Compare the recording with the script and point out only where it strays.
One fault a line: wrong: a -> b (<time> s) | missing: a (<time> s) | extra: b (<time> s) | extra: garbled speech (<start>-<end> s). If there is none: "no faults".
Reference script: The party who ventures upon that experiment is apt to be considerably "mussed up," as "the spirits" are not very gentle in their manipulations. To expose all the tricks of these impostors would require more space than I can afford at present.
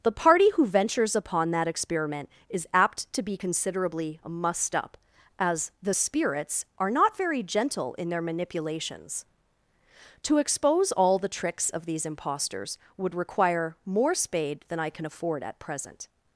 wrong: space -> spade (14.1 s)